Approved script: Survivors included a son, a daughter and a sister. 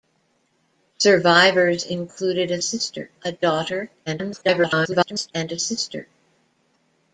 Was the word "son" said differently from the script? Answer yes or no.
yes